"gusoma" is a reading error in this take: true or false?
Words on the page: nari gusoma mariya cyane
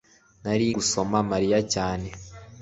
false